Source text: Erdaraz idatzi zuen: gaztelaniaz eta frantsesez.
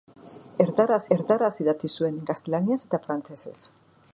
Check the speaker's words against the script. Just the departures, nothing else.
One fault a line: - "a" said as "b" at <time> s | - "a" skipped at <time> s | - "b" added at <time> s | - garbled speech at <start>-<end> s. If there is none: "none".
- "erdaraz" added at 1.2 s